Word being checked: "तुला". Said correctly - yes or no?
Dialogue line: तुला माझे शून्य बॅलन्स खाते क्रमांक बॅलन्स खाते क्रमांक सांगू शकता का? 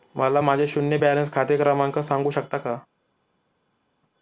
no